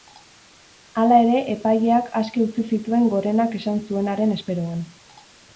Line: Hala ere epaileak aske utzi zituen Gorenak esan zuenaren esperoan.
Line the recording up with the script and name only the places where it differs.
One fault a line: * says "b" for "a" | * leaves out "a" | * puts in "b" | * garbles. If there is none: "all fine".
all fine